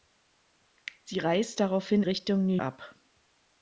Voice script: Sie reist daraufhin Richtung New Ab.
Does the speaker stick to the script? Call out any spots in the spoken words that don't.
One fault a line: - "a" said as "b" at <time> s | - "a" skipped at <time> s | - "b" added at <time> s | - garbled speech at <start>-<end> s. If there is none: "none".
none